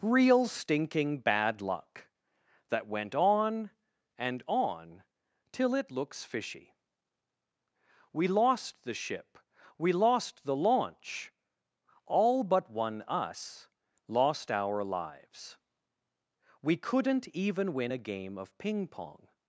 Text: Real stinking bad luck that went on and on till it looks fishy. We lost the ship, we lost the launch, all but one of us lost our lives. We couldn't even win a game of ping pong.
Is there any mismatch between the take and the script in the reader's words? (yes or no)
yes